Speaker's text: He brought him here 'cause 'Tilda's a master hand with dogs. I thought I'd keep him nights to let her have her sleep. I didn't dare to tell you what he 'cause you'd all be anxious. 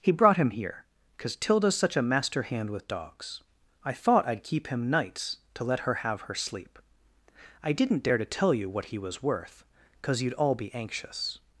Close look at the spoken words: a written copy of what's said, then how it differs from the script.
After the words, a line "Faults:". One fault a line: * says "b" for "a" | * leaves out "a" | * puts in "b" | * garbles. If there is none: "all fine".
He brought him here 'cause 'Tilda's such a master hand with dogs. I thought I'd keep him nights to let her have her sleep. I didn't dare to tell you what he was worth, 'cause you'd all be anxious.
Faults:
* puts in "such"
* puts in "was worth"